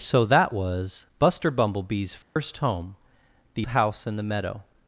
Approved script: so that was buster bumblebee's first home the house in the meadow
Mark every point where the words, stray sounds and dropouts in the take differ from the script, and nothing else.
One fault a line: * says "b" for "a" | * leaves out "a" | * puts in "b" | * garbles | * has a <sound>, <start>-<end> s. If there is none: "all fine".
* has a dropout, 2.2-2.4 s